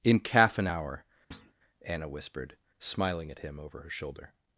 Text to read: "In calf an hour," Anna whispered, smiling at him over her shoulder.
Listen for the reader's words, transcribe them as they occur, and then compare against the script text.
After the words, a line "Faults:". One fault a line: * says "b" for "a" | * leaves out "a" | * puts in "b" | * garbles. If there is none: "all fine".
"In calf an hour," Anna whispered, smiling at him over her shoulder.
Faults:
all fine